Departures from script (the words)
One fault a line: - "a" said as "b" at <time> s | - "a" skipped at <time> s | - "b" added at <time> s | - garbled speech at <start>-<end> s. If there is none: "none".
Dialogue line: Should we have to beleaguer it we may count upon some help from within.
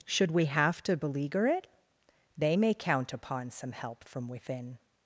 - "we" said as "they" at 2.4 s